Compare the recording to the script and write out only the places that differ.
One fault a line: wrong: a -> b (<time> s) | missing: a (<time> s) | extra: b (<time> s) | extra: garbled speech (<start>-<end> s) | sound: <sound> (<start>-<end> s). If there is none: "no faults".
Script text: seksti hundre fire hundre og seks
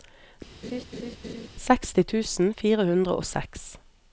sound: laugh (0.6-1.5 s)
wrong: hundre -> tusen (2.1 s)